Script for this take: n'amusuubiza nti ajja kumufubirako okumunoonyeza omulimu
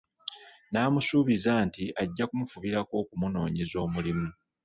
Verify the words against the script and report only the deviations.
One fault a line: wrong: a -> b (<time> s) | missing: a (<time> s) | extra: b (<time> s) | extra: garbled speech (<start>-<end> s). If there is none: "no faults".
no faults